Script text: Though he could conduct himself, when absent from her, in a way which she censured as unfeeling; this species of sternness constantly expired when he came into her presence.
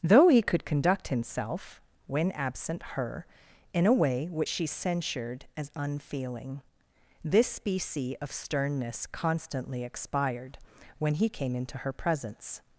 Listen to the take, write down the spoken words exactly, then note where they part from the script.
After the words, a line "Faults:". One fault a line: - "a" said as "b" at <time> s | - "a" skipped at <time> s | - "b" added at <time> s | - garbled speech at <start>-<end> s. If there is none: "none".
Though he could conduct himself, when absent her, in a way which she censured as unfeeling; this specie of sternness constantly expired when he came into her presence.
Faults:
- "from" skipped at 2.8 s
- "species" said as "specie" at 7.5 s